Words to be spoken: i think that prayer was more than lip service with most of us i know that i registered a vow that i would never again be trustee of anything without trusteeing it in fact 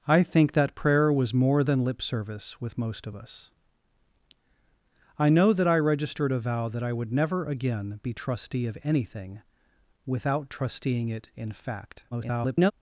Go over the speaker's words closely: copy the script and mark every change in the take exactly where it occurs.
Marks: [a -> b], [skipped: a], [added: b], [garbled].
i think that prayer was more than lip service with most of us i know that i registered a vow that i would never again be trustee of anything without trusteeing it in fact [garbled]